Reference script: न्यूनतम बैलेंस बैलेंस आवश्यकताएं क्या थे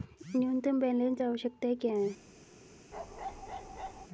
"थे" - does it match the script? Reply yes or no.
no